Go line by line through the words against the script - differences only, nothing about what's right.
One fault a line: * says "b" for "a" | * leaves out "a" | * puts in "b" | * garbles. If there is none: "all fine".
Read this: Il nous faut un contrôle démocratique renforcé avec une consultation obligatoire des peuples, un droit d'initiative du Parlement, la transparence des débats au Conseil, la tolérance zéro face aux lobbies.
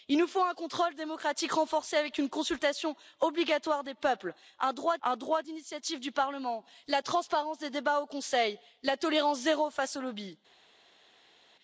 * puts in "un droit"